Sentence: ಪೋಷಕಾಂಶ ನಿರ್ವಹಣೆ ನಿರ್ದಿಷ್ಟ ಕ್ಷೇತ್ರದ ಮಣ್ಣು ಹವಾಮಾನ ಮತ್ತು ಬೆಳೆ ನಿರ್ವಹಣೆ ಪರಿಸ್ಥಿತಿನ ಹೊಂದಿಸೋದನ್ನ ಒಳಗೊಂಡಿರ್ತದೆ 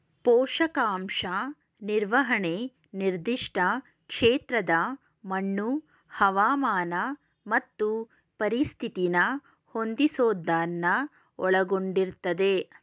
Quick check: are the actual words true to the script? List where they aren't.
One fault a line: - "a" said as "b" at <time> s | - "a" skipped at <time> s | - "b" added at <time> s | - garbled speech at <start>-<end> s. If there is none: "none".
- "ಬೆಳೆ ನಿರ್ವಹಣೆ" skipped at 7.9 s